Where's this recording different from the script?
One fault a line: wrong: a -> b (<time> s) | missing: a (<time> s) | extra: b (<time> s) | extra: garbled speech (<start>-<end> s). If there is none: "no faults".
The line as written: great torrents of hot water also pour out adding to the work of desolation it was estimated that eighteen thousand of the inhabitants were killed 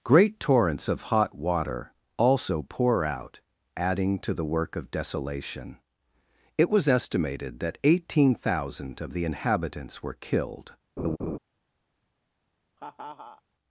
no faults